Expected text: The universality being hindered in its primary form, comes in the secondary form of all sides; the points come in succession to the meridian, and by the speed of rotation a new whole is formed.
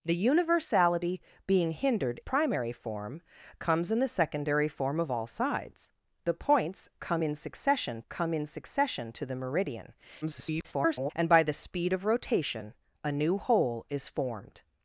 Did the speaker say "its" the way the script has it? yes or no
no